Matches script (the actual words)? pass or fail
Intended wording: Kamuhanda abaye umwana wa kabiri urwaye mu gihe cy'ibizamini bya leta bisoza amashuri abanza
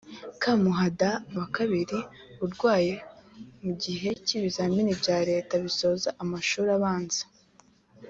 fail